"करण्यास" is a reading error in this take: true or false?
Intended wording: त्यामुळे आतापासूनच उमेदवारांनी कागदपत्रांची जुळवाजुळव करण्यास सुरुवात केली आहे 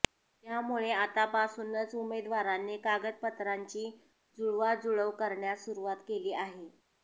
false